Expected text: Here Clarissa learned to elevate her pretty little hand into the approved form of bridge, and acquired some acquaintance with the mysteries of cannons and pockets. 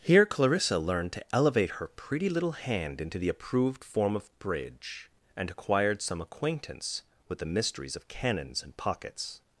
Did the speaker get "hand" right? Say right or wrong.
right